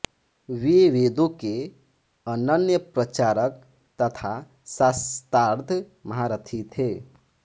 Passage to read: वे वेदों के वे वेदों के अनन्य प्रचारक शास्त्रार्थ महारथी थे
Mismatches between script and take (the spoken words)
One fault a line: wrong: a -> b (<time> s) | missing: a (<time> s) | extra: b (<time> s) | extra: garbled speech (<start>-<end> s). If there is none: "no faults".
missing: वे वेदों के (1.5 s)
extra: तथा (4.0 s)